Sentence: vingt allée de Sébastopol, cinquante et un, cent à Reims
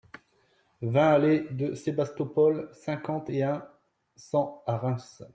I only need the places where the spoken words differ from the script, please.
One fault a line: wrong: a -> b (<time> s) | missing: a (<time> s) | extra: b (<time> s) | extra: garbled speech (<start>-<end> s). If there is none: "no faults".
no faults